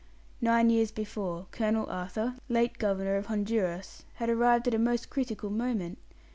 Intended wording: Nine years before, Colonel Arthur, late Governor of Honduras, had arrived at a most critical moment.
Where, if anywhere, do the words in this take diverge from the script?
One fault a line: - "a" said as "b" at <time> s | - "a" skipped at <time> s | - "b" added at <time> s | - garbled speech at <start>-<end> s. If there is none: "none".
none